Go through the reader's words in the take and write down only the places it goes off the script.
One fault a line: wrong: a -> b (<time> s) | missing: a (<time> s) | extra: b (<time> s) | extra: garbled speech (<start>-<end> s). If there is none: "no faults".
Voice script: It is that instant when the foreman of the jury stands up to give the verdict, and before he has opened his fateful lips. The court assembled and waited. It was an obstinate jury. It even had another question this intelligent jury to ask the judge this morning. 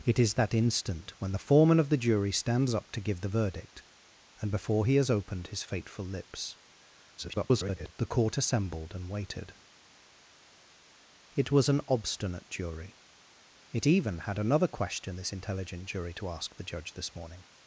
extra: garbled speech (7.2-7.9 s)